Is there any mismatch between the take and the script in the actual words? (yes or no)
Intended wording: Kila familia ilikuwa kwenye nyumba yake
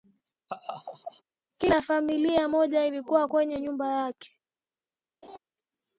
yes